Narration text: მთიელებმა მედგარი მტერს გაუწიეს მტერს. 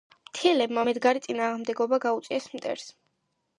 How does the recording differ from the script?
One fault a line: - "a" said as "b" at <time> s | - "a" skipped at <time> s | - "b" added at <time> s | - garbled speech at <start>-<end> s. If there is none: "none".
- "მტერს" said as "წინააღმდეგობა" at 1.3 s